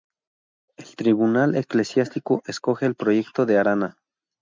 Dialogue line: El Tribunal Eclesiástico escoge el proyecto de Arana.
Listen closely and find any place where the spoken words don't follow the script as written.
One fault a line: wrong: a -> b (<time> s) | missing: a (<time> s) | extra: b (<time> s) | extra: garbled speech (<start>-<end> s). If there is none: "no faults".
no faults